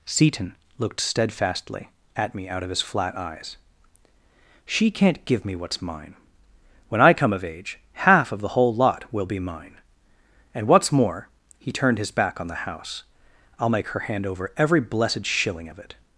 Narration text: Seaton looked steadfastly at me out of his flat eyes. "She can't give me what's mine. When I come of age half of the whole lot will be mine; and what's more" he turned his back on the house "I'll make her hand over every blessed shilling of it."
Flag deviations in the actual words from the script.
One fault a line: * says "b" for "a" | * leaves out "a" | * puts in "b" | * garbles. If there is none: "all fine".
all fine